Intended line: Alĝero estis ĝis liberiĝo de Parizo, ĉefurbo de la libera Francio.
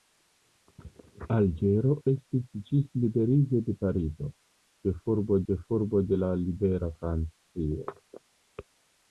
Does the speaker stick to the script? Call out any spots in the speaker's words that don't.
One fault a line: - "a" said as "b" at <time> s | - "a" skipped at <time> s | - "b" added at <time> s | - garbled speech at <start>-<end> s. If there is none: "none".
- "ĉefurbo" added at 5.5 s